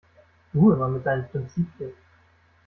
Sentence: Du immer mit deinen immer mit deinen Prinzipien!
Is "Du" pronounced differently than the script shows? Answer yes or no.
no